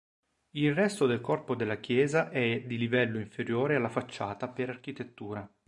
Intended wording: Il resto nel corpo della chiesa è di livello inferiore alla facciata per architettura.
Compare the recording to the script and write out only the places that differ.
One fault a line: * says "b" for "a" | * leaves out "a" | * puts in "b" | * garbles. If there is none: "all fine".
* says "del" for "nel"